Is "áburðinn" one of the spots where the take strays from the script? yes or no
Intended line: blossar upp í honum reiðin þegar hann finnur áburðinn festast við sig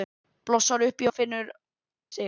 yes